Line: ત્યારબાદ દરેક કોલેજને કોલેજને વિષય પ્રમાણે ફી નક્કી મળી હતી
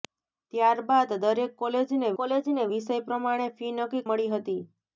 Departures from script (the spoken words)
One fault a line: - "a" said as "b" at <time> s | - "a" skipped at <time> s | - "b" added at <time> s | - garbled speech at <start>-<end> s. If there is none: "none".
none